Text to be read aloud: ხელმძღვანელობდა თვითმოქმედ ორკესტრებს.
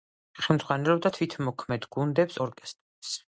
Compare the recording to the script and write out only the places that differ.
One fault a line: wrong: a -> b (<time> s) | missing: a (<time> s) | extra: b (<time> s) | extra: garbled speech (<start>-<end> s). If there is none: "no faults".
extra: გუნდებს (2.0 s)